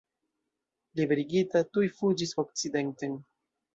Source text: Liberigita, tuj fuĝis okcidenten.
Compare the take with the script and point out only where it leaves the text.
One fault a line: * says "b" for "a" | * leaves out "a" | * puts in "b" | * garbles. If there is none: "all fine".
all fine